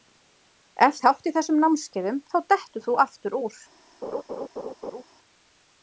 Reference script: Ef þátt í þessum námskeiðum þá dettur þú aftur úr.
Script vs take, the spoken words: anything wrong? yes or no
no